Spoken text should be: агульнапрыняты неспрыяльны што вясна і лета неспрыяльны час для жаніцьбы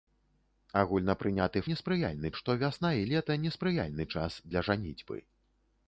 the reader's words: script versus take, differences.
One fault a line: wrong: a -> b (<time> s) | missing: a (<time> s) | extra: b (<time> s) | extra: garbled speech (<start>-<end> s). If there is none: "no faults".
no faults